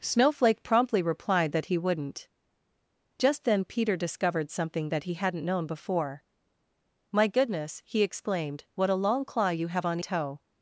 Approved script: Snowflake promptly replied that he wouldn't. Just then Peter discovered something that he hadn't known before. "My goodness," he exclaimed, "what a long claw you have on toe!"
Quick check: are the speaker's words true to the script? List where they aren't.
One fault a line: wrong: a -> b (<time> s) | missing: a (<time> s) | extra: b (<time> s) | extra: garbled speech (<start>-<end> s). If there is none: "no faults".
no faults